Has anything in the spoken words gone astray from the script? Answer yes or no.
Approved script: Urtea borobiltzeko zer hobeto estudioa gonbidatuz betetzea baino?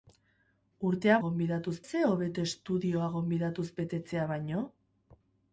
yes